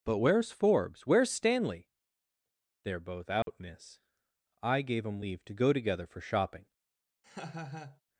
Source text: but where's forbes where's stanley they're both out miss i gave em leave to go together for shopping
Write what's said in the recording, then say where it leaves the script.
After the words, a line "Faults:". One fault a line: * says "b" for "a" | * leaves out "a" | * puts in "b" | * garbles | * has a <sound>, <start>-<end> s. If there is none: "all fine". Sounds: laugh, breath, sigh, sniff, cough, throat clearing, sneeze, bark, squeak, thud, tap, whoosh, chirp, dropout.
but where's forbes where's stanley they're both out miss i gave em leave to go together for shopping
Faults:
* has a dropout, 3.4-3.5 s
* has a laugh, 7.2-8.0 s